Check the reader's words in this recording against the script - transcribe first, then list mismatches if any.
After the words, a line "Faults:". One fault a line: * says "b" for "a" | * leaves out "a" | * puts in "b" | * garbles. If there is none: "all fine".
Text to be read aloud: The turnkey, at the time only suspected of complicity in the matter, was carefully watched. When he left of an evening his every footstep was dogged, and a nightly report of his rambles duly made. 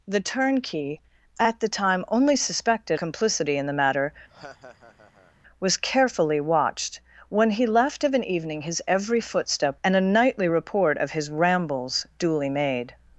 The turnkey, at the time only suspected complicity in the matter, was carefully watched. When he left of an evening his every footstep and a nightly report of his rambles duly made.
Faults:
* leaves out "of"
* leaves out "was dogged"